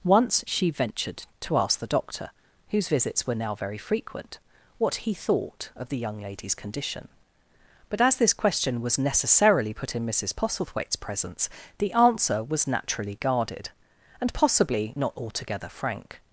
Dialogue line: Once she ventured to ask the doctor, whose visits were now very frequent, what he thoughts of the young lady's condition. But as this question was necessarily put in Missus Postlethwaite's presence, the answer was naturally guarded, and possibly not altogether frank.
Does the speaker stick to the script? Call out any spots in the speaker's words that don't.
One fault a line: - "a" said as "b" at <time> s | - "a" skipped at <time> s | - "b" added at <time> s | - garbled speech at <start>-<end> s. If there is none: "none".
- "thoughts" said as "thought" at 5.1 s